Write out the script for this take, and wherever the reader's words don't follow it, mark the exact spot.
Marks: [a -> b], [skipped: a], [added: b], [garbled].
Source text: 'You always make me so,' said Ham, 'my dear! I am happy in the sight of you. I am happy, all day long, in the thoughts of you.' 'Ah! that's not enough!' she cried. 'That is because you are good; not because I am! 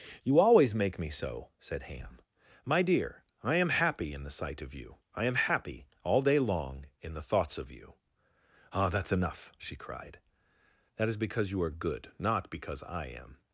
'You always make me so,' said Ham, 'my dear! I am happy in the sight of you. I am happy, all day long, in the thoughts of you.' 'Ah! that's [skipped: not] enough!' she cried. 'That is because you are good; not because I am!